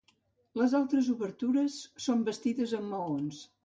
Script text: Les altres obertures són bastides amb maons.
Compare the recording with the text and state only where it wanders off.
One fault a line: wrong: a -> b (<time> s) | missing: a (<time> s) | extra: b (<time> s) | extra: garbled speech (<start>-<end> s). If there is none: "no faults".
no faults